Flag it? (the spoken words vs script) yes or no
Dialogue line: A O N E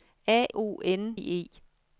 no